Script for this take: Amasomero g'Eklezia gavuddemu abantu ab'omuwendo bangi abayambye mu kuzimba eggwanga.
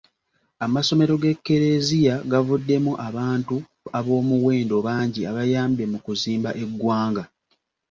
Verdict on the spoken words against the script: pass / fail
pass